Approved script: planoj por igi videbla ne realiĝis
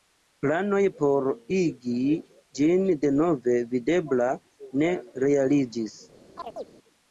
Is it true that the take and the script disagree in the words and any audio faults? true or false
true